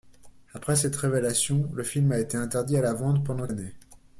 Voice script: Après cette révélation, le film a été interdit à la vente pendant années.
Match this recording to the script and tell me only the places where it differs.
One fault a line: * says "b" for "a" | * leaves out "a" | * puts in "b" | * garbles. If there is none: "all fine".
all fine